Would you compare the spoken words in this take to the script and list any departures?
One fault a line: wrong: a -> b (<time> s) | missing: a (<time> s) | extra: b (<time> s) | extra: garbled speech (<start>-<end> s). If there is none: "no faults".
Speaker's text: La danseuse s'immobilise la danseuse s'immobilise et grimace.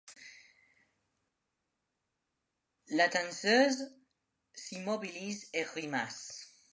missing: la danseuse s'immobilise (5.5 s)